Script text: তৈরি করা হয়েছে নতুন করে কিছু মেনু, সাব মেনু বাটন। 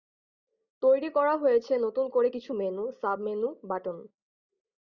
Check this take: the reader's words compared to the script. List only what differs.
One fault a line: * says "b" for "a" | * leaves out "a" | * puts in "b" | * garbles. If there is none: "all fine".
all fine